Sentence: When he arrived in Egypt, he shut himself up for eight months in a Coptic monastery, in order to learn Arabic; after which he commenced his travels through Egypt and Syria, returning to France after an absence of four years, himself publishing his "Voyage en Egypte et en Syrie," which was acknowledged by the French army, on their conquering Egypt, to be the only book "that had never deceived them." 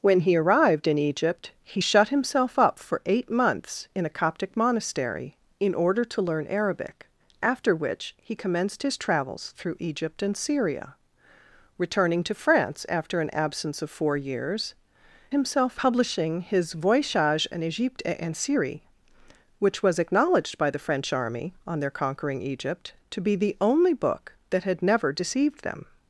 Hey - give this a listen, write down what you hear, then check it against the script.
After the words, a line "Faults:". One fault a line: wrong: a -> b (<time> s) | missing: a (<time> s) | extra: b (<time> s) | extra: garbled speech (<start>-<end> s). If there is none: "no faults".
When he arrived in Egypt, he shut himself up for eight months in a Coptic monastery, in order to learn Arabic; after which he commenced his travels through Egypt and Syria, returning to France after an absence of four years, himself publishing his "Voyage en Egypte et en Syrie," which was acknowledged by the French army, on their conquering Egypt, to be the only book "that had never deceived them."
Faults:
no faults